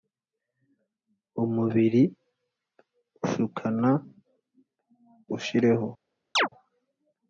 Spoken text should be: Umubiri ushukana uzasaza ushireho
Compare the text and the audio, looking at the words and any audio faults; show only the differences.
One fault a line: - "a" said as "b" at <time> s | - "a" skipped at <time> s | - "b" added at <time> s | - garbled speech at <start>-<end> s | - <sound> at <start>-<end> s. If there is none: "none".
- "uzasaza" skipped at 3.9 s
- chirp at 6.4-6.5 s